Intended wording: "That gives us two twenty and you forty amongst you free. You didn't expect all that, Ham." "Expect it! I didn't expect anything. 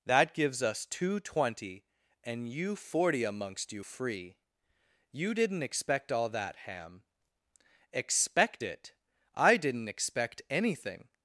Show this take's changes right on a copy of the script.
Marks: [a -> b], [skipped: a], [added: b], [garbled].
"That gives us two twenty and you forty amongst you free. You didn't expect all that, Ham." "Expect it! I didn't expect anything.